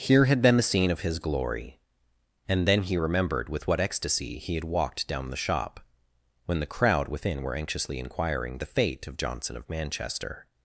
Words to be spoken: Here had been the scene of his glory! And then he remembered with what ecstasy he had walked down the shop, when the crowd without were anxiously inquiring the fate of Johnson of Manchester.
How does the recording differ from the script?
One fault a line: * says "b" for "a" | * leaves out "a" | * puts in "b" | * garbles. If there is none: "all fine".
* says "within" for "without"